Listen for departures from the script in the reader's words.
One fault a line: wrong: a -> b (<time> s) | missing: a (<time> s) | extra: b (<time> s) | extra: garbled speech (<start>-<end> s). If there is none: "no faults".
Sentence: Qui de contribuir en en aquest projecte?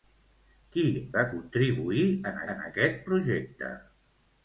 no faults